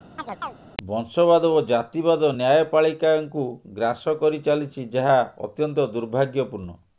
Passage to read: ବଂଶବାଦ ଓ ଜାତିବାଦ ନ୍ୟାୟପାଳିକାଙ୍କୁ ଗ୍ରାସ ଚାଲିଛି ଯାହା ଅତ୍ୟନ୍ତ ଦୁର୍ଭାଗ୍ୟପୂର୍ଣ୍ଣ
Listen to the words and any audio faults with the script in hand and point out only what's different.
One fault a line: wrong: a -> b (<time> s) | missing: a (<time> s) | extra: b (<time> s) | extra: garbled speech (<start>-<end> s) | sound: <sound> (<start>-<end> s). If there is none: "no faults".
sound: chirp (0.2-0.6 s)
extra: କରି (4.2 s)